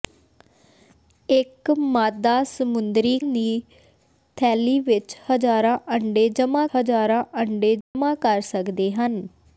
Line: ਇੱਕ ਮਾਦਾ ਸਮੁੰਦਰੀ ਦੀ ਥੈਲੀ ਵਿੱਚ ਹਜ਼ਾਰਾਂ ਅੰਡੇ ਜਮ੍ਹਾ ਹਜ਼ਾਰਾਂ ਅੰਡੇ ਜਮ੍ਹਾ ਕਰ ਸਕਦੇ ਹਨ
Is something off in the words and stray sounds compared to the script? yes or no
yes